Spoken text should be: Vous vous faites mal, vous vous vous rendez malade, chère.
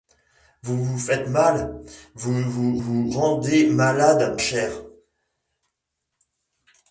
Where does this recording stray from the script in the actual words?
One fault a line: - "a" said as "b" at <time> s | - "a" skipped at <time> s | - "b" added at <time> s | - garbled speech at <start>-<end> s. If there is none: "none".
none